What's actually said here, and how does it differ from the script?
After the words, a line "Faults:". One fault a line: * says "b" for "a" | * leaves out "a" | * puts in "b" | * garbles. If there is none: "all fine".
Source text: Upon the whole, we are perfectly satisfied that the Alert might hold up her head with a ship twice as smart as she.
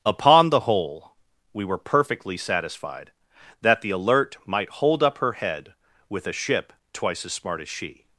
Upon the whole, we were perfectly satisfied that the Alert might hold up her head with a ship twice as smart as she.
Faults:
* says "were" for "are"